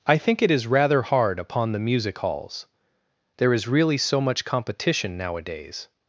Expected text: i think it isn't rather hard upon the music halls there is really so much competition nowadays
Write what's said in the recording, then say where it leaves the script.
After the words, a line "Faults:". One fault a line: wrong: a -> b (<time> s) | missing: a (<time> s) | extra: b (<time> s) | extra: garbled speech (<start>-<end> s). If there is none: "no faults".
i think it is rather hard upon the music halls there is really so much competition nowadays
Faults:
wrong: isn't -> is (0.5 s)